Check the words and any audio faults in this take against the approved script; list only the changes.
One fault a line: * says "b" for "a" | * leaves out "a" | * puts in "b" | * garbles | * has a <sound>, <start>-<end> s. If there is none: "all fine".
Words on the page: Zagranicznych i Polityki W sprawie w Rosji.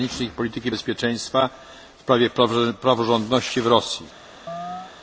* puts in "Bezpieczeństwa"
* puts in "praworządności"
* has a chirp, 4.5-4.9 s